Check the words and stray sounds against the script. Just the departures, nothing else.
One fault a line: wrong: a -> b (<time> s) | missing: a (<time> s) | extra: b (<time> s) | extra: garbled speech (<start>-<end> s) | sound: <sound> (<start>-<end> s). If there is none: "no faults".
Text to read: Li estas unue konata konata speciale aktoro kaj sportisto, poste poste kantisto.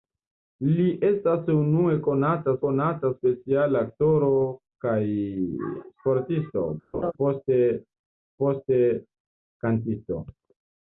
sound: laugh (6.9-7.1 s)